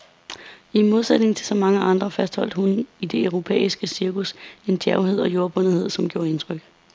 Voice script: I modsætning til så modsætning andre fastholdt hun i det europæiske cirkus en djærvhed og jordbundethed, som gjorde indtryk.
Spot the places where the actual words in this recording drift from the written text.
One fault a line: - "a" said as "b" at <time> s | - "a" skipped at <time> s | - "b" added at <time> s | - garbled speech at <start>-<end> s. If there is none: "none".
- "modsætning" said as "mange" at 1.6 s